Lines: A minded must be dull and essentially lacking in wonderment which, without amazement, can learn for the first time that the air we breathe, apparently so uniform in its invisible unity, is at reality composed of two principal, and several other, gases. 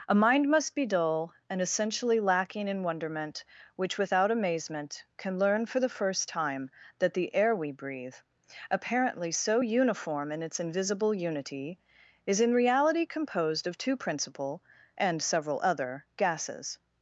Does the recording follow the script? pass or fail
fail